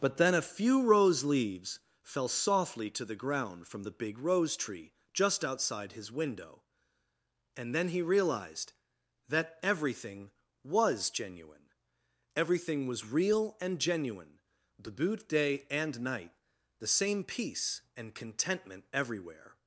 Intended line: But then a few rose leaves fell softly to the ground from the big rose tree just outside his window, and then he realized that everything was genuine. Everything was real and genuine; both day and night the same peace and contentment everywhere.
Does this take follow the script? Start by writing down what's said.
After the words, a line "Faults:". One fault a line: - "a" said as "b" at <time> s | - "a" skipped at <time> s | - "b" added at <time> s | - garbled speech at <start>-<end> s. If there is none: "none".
But then a few rose leaves fell softly to the ground from the big rose tree just outside his window, and then he realized that everything was genuine. Everything was real and genuine; the boot day and night the same peace and contentment everywhere.
Faults:
- "both" said as "the boot" at 14.8 s